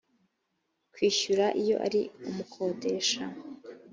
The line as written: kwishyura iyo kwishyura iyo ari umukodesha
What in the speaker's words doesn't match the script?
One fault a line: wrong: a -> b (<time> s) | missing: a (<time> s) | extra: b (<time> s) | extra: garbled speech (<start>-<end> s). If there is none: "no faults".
missing: kwishyura iyo (1.8 s)